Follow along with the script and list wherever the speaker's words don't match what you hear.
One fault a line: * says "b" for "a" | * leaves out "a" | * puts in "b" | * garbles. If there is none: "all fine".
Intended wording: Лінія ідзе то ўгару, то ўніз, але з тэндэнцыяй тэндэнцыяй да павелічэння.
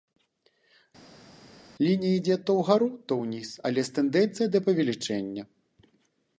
* leaves out "тэндэнцыяй"